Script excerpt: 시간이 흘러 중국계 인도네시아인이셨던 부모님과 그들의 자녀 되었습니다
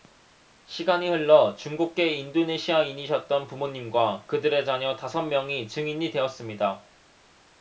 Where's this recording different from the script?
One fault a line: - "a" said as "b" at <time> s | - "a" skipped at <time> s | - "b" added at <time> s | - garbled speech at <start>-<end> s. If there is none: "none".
- "다섯 명이 증인이" added at 5.0 s